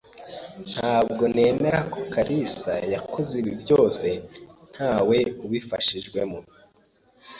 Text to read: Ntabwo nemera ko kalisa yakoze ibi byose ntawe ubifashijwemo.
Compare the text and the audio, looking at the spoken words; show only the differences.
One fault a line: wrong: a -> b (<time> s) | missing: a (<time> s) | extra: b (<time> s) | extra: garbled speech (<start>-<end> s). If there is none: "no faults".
no faults